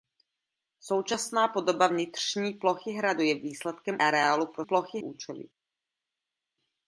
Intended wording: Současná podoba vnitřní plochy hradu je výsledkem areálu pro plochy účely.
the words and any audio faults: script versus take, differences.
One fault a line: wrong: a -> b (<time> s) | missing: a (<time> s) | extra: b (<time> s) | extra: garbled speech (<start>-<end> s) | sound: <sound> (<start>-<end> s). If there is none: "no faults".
no faults